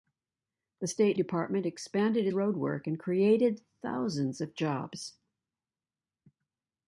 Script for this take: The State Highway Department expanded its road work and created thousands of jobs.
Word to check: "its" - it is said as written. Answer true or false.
false